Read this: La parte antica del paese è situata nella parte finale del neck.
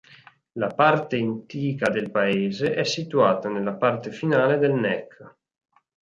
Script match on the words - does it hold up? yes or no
yes